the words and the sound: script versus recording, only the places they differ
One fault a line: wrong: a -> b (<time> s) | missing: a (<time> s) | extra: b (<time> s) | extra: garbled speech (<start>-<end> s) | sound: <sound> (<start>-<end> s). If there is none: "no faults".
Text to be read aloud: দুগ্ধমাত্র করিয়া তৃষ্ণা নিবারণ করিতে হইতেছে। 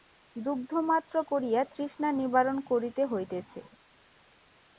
no faults